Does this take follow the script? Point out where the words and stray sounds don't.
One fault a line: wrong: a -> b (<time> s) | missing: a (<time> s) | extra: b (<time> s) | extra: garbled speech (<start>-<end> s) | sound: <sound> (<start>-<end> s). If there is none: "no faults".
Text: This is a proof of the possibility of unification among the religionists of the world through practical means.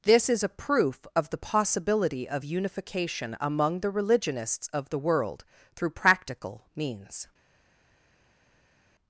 no faults